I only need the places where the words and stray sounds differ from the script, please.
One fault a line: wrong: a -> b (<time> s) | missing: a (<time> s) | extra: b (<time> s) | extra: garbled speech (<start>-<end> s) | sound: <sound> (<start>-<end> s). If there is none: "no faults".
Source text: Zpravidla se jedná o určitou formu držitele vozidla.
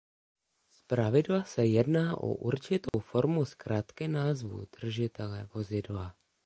sound: dropout (2.9-2.9 s)
extra: zkratky názvu (3.5 s)